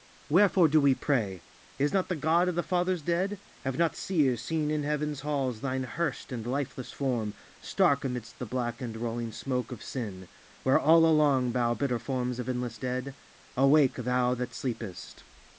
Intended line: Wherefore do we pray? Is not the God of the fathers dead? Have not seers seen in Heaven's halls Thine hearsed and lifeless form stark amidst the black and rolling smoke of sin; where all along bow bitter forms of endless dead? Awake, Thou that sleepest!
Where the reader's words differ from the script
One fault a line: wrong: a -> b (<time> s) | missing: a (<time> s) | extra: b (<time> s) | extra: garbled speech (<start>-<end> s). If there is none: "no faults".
no faults